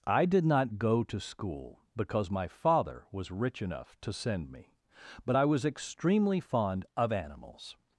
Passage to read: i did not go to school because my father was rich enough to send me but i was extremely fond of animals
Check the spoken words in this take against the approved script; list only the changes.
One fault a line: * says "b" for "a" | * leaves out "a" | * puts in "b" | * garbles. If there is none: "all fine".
all fine